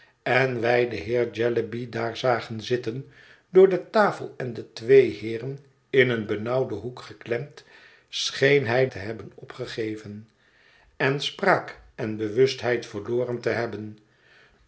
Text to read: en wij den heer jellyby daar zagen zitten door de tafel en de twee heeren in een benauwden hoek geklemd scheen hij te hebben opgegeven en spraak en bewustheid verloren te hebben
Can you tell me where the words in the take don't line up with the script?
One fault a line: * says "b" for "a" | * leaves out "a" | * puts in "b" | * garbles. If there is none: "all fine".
all fine